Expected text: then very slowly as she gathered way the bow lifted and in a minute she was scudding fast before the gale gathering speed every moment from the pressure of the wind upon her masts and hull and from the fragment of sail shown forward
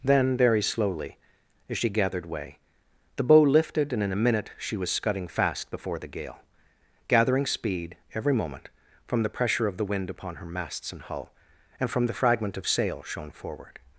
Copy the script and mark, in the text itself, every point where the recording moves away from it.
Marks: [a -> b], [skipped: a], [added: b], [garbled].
then very slowly as she gathered way the bow lifted and in a minute she was scudding fast before the gale gathering speed every moment from the pressure of the wind upon her masts and hull and from the fragment of sail shown forward